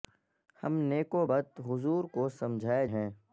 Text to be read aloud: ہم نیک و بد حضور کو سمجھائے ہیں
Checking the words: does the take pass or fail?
pass